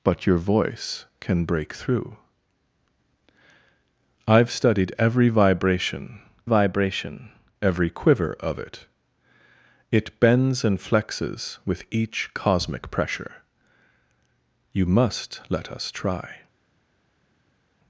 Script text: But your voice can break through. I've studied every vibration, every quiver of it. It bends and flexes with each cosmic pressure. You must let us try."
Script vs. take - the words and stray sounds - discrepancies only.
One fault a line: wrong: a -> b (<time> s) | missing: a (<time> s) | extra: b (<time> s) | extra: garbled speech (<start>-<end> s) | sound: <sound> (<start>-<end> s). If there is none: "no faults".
extra: vibration (6.4 s)